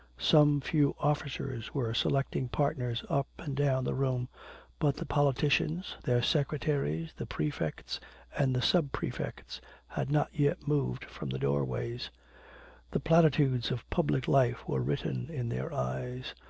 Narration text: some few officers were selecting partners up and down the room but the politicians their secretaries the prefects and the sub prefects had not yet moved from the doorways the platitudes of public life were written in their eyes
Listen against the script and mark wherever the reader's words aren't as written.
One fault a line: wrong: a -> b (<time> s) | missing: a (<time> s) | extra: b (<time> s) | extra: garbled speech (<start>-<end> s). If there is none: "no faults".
no faults